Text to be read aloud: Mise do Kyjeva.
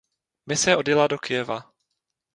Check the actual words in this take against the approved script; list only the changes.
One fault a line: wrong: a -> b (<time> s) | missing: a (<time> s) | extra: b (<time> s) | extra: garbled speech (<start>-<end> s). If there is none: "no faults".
extra: odjela (0.7 s)